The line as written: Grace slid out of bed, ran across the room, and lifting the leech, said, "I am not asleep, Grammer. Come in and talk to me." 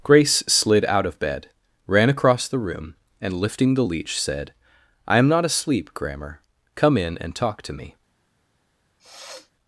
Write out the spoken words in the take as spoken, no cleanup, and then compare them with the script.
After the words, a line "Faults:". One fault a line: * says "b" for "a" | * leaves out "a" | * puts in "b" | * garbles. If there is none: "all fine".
Grace slid out of bed, ran across the room, and lifting the leech, said, "I am not asleep, Grammer. Come in and talk to me."
Faults:
all fine